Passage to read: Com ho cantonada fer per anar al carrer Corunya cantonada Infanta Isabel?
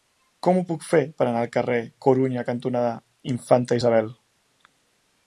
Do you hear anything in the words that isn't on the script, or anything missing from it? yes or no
yes